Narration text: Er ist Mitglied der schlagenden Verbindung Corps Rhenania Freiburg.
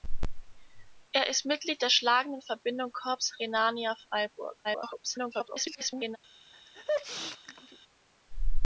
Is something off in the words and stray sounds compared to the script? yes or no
yes